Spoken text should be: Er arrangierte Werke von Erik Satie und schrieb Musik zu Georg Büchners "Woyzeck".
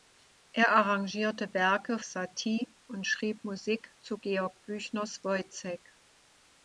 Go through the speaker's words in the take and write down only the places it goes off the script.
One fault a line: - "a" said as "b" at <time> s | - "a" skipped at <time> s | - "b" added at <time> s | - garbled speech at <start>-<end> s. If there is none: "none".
- "von Erik" skipped at 2.0 s